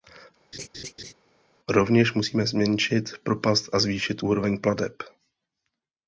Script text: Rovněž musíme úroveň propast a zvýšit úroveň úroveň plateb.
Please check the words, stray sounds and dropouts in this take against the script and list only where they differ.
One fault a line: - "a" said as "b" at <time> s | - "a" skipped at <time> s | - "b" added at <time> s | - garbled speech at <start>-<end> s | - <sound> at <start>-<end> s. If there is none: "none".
- laugh at 0.5-1.1 s
- "úroveň" said as "zmenšit" at 2.5 s
- "úroveň" skipped at 4.6 s